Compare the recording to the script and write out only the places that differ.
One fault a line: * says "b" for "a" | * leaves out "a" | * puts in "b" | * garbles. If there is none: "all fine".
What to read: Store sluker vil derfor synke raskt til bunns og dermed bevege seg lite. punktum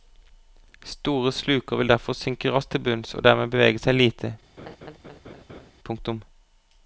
all fine